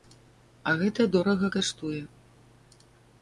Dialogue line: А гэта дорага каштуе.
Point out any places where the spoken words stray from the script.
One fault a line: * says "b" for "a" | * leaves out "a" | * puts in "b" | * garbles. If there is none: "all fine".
all fine